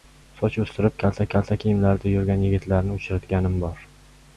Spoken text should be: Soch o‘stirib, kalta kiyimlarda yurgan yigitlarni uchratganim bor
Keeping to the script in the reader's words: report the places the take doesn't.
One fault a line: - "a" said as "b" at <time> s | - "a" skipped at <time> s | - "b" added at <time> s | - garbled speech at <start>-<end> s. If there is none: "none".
- "kalta" added at 1.3 s